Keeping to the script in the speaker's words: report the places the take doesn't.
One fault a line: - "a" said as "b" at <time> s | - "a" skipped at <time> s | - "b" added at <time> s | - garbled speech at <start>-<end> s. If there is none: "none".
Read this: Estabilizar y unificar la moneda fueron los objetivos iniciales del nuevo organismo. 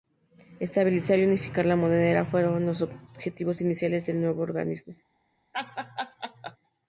none